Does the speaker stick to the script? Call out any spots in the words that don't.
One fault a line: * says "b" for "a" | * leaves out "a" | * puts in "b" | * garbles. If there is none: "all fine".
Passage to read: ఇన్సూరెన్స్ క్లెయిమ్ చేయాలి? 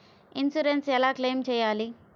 * puts in "ఎలా"